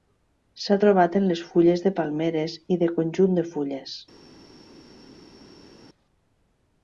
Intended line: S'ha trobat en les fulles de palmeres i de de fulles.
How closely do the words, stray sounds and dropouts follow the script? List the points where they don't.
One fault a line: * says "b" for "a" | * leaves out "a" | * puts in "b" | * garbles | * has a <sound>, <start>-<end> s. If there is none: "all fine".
* puts in "conjunt"